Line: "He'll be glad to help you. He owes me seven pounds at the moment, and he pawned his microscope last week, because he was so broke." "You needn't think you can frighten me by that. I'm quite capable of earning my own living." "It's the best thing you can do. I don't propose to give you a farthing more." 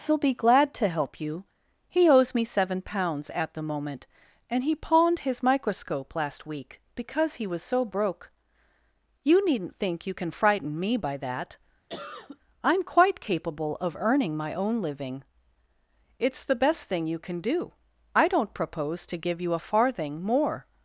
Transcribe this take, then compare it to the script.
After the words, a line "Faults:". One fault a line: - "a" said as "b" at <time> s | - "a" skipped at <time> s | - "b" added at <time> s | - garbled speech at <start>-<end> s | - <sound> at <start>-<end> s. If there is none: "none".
"He'll be glad to help you. He owes me seven pounds at the moment, and he pawned his microscope last week, because he was so broke." "You needn't think you can frighten me by that. I'm quite capable of earning my own living." "It's the best thing you can do. I don't propose to give you a farthing more."
Faults:
- cough at 11.9-12.4 s